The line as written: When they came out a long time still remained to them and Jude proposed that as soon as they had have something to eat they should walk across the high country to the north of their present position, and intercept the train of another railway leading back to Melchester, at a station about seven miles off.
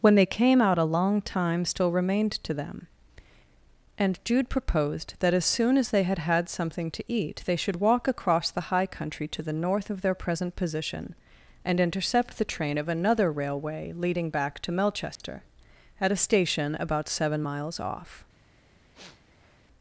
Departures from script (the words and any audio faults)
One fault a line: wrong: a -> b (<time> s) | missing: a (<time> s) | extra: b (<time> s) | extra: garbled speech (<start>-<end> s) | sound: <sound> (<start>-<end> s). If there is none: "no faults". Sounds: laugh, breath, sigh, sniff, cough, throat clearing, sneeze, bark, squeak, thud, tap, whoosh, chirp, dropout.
wrong: have -> had (6.2 s)
sound: dropout (15.2-15.2 s)
sound: sniff (18.9-19.6 s)